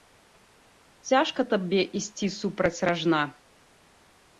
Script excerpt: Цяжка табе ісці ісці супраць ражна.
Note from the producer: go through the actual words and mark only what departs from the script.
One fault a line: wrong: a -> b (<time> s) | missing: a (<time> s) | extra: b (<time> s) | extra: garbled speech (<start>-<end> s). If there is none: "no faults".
missing: ісці (2.3 s)